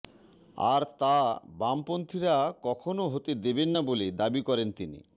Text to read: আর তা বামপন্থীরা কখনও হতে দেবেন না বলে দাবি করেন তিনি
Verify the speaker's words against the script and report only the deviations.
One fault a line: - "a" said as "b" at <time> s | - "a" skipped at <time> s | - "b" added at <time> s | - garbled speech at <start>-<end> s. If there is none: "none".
none